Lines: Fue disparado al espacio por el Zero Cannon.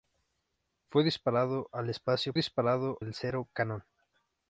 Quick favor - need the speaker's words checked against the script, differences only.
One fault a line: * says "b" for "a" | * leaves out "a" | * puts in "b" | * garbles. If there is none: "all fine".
* says "disparado" for "por"